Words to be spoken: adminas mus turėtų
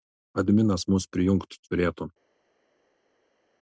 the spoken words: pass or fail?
fail